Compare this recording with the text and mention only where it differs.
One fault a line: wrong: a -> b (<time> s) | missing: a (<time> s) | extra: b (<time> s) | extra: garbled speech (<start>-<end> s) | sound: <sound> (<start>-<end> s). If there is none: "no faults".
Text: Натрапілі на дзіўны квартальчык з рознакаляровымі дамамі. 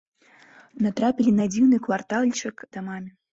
missing: з рознакаляровымі (2.6 s)